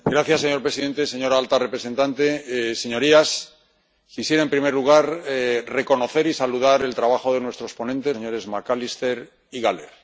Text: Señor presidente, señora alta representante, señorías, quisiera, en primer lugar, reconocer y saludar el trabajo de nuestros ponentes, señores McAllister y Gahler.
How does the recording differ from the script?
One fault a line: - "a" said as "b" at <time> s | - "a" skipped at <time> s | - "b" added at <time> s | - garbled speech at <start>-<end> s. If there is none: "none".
none